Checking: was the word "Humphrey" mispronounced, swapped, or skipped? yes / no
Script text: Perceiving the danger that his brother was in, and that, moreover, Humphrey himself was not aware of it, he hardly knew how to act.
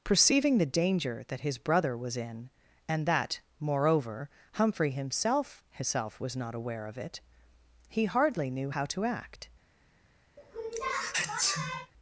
no